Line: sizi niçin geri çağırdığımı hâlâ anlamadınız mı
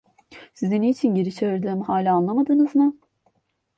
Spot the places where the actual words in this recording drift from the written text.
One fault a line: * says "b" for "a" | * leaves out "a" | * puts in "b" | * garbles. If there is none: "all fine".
all fine